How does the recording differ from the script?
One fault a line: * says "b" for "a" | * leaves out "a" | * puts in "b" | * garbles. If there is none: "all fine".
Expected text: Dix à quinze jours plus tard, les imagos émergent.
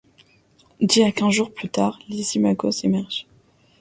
all fine